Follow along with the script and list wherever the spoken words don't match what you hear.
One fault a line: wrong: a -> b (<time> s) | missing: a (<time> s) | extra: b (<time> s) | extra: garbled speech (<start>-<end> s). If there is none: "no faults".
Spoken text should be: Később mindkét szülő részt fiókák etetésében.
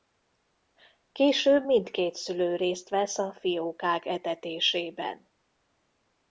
extra: vesz a (2.9 s)